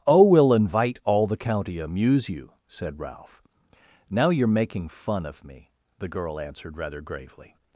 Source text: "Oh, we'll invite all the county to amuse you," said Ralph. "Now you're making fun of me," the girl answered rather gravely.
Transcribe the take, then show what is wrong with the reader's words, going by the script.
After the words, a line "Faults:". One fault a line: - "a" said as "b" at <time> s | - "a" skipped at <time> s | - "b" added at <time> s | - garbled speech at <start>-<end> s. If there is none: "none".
"Oh, we'll invite all the county amuse you," said Ralph. "Now you're making fun of me," the girl answered rather gravely.
Faults:
- "to" skipped at 1.8 s